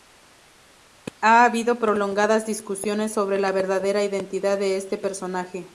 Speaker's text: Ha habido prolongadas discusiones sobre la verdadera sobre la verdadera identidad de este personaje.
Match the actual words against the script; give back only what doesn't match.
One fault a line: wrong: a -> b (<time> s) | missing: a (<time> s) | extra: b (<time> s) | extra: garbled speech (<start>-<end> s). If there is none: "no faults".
missing: sobre la verdadera (4.0 s)